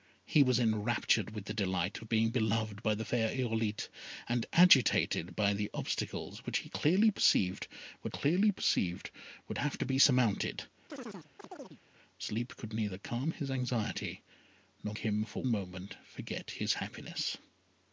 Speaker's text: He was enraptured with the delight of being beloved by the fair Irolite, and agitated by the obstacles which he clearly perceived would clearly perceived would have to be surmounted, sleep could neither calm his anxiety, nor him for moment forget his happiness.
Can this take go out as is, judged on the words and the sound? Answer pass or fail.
fail